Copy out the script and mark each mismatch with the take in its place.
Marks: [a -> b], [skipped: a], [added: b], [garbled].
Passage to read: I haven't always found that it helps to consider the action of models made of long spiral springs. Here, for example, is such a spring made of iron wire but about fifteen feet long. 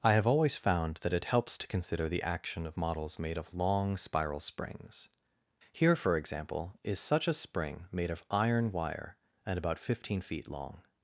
I [haven't -> have] always found that it helps to consider the action of models made of long spiral springs. Here, for example, is such a spring made of iron wire [but -> and] about fifteen feet long.